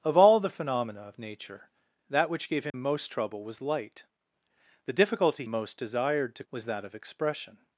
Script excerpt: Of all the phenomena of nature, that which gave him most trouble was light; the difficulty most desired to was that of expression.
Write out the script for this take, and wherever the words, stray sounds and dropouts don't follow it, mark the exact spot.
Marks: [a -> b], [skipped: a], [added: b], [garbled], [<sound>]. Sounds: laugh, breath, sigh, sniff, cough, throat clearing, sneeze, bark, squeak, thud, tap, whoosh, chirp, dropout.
Of all the phenomena of nature, that which gave him [dropout] most trouble was light; the difficulty most desired to was that of expression.